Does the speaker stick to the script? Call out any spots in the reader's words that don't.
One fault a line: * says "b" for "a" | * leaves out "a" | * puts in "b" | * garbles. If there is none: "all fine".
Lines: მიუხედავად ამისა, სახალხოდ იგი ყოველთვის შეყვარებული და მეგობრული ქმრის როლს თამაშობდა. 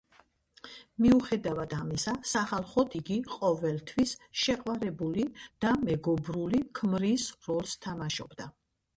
all fine